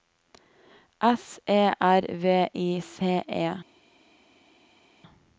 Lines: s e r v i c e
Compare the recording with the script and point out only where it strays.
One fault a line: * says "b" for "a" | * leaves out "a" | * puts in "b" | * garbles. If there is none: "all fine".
all fine